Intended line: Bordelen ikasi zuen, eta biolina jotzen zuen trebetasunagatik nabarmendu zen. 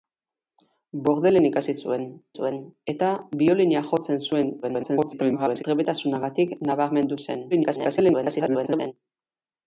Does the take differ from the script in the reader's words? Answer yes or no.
yes